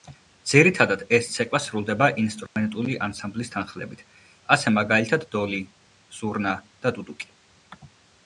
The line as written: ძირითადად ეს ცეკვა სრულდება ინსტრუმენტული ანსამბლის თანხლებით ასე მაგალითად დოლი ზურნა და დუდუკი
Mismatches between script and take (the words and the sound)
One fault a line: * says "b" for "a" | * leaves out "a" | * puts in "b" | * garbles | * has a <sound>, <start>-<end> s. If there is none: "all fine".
* has a dropout, 2.5-2.6 s